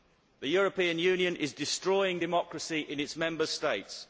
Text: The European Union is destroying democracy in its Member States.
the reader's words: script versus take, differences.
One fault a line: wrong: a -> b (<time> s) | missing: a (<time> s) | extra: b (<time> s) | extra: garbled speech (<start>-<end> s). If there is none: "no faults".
no faults